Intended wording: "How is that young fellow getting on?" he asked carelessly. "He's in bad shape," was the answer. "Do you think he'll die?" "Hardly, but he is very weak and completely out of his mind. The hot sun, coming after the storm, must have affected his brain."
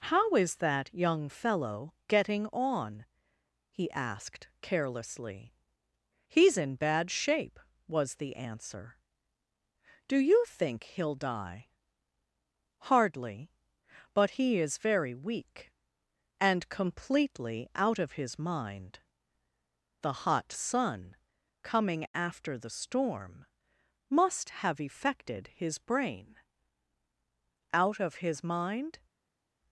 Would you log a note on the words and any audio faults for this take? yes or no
yes